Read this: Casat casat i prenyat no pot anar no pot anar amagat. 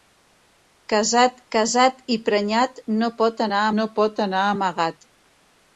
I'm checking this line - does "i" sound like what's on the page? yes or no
yes